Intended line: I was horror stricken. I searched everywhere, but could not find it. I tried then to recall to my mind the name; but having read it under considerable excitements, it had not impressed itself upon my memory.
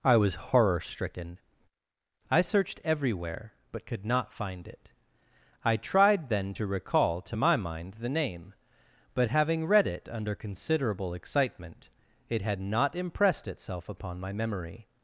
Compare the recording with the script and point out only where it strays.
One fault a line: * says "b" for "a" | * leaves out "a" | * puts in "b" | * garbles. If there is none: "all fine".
* says "excitement" for "excitements"